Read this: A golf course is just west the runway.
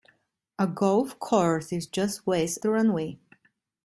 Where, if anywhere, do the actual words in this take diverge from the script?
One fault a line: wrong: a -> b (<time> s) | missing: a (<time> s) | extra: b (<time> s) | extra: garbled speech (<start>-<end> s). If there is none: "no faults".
no faults